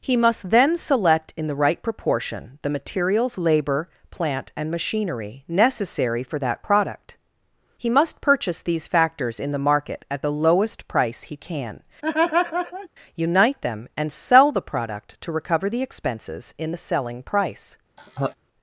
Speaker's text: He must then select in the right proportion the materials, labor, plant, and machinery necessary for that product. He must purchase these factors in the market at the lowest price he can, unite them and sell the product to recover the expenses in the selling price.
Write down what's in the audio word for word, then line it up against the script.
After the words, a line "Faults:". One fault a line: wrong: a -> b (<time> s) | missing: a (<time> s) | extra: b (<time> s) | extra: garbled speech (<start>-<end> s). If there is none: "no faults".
He must then select in the right proportion the materials, labor, plant, and machinery necessary for that product. He must purchase these factors in the market at the lowest price he can, unite them and sell the product to recover the expenses in the selling price.
Faults:
no faults